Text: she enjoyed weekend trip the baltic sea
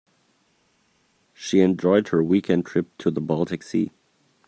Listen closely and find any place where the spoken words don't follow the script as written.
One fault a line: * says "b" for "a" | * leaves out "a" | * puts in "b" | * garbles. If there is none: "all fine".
* puts in "her"
* puts in "to"